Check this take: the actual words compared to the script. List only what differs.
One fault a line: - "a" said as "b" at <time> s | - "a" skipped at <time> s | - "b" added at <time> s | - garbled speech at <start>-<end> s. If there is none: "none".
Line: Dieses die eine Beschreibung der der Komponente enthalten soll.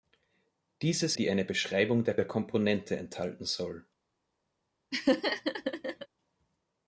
none